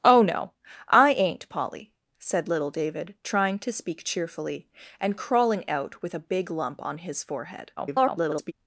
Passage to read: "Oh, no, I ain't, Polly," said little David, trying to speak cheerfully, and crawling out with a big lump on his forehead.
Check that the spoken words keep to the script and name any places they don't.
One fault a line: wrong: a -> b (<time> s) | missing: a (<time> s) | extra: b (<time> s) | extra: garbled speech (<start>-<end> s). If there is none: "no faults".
extra: garbled speech (7.8-8.5 s)